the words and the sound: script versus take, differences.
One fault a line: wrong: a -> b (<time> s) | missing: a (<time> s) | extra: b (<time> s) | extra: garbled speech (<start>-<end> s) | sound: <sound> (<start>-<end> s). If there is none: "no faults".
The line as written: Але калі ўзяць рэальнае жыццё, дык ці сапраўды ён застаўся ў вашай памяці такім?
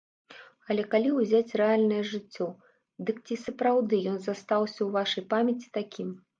no faults